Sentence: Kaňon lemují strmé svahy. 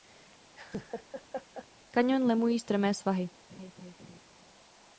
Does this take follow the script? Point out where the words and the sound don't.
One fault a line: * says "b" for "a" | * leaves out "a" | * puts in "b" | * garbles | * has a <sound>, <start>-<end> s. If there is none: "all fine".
* has a laugh, 0.5-1.7 s
* has a laugh, 3.5-4.2 s